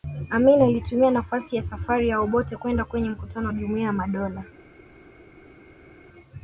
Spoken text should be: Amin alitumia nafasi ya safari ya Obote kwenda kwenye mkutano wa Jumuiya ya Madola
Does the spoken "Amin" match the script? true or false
true